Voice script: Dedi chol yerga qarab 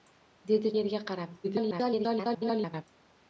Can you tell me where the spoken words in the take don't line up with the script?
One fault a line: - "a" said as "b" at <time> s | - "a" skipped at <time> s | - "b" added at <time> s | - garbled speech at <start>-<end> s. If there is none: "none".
- "chol" skipped at 0.7 s
- garbled speech at 1.4-2.8 s